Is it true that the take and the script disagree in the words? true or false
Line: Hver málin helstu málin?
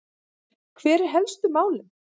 true